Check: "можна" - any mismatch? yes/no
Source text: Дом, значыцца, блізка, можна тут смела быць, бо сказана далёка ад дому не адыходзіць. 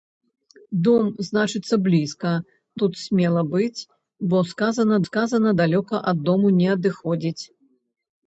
yes